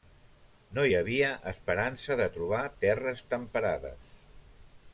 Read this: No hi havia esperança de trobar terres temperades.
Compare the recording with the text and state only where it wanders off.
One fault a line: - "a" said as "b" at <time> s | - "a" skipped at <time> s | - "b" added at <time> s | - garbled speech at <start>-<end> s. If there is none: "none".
none